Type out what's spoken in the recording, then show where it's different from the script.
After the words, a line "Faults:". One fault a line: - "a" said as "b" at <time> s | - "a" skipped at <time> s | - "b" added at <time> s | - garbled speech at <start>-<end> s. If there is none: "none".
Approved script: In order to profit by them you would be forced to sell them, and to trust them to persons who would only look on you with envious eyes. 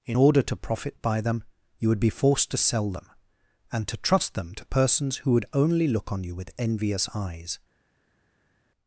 In order to profit by them you would be forced to sell them, and to trust them to persons who would only look on you with envious eyes.
Faults:
none